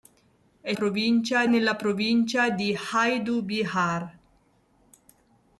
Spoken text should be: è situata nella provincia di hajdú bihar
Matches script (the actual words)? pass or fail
fail